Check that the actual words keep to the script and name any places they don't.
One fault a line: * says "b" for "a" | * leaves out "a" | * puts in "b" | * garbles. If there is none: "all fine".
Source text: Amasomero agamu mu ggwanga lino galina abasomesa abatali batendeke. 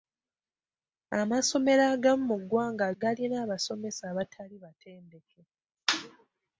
* leaves out "lino"